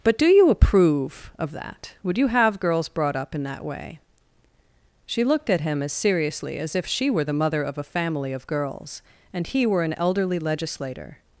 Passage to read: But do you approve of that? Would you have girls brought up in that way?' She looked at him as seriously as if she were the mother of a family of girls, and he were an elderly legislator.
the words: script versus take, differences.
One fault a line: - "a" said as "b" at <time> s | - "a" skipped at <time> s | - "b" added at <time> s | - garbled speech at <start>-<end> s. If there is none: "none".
none